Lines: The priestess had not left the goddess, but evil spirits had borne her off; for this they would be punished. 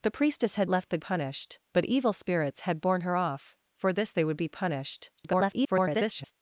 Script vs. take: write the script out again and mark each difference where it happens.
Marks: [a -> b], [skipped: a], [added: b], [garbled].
The priestess had [skipped: not] left the [goddess, -> punished] but evil spirits had borne her off; for this they would be punished. [garbled]